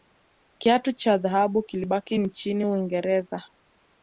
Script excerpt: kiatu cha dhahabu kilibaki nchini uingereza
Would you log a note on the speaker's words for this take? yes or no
no